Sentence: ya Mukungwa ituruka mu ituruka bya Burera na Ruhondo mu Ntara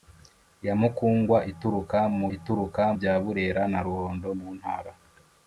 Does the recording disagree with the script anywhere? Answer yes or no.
no